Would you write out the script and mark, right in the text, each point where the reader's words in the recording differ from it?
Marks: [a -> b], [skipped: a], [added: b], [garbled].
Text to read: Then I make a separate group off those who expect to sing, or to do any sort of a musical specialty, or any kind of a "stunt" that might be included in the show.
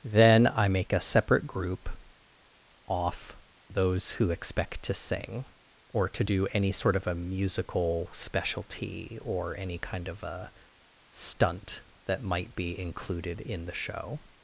Then I make a separate group off those who expect to sing, or to do any sort of a musical specialty, or any kind of a "stunt" that might be included in the show.